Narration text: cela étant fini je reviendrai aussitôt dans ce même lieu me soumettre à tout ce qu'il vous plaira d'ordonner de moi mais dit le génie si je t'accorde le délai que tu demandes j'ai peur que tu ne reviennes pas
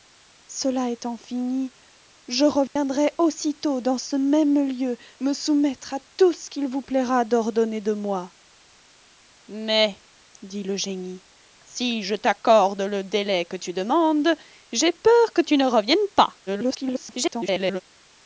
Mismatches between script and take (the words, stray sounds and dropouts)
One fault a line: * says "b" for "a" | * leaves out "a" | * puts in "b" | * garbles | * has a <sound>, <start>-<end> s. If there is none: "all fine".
* has a dropout, 2.7-2.8 s
* garbles